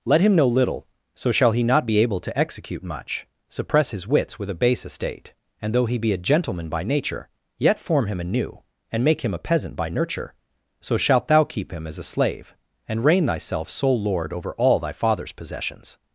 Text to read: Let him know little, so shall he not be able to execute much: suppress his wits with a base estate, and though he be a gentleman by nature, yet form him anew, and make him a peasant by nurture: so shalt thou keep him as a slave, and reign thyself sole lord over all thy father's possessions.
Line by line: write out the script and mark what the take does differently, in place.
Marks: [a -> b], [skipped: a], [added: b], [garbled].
Let him know little, so shall he not be able to execute much: suppress his wits with a base estate, and though he be a gentleman by nature, yet form him anew, and make him a peasant by nurture: so shalt thou keep him as a slave, and reign thyself sole lord over all thy father's possessions.